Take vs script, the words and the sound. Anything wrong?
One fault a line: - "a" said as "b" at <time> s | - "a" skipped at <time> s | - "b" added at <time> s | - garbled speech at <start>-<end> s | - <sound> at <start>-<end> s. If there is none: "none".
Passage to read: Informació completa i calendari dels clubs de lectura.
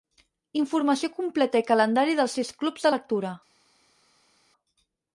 - "sis" added at 2.4 s